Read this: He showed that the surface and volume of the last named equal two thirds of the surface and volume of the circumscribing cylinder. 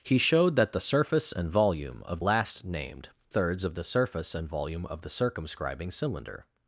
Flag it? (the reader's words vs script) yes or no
yes